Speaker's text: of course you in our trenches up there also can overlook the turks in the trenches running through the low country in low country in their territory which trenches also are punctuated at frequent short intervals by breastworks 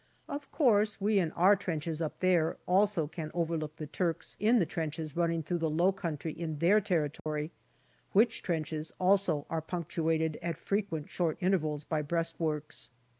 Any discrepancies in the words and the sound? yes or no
yes